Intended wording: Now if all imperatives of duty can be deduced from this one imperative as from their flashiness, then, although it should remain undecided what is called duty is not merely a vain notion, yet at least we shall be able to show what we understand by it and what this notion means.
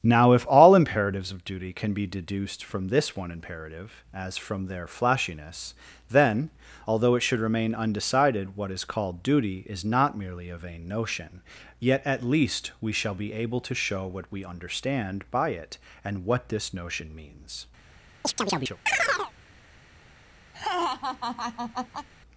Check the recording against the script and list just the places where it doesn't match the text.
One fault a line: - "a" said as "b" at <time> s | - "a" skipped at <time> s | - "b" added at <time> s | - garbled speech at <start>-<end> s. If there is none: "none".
none